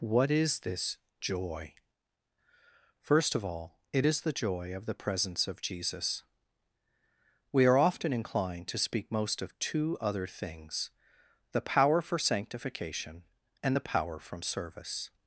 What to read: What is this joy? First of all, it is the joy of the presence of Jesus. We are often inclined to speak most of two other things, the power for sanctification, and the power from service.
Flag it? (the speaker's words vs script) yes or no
no